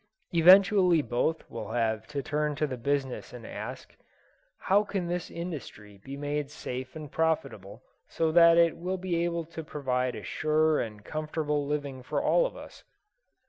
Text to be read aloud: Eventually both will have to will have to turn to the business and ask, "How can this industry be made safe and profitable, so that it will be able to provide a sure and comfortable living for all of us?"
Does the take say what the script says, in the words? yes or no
no